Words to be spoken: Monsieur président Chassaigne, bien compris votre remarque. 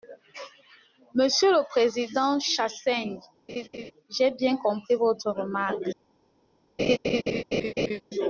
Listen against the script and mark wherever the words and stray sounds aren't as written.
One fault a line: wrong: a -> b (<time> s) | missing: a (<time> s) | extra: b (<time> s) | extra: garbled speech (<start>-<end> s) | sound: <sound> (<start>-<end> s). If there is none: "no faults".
extra: le (1.5 s)
sound: laugh (3.5-3.9 s)
extra: j'ai (4.1 s)
sound: laugh (6.8-8.0 s)